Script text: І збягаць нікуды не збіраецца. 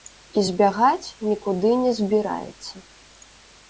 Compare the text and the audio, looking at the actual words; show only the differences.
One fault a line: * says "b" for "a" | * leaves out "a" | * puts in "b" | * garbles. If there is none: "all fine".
all fine